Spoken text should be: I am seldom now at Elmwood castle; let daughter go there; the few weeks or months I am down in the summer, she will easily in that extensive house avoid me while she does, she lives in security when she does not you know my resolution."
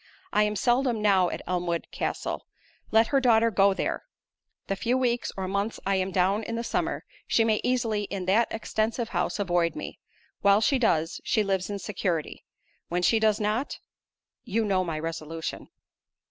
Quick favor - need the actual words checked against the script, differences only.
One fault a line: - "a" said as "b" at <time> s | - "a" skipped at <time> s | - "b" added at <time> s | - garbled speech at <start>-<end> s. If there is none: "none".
- "her" added at 3.1 s
- "will" said as "may" at 7.4 s